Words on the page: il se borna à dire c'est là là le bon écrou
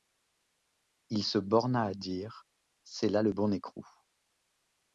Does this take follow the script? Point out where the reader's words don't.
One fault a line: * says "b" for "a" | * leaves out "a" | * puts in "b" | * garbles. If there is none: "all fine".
* leaves out "là"